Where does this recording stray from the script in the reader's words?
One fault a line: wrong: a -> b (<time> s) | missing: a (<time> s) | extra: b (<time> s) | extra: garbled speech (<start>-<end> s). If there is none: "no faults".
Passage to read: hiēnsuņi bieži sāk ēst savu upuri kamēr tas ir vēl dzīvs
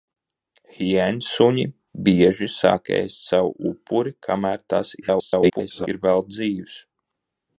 extra: garbled speech (5.0-5.9 s)